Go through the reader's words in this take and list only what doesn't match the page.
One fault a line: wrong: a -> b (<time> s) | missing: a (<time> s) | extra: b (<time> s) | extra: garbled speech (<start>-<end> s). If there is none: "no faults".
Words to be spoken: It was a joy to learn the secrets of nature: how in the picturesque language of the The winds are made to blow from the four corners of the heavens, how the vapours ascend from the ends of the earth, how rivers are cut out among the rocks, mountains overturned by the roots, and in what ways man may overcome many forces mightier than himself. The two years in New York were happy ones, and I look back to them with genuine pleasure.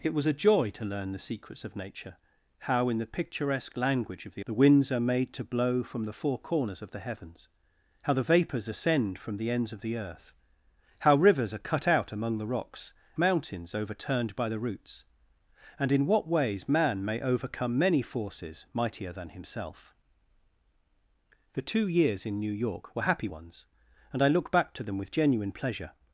no faults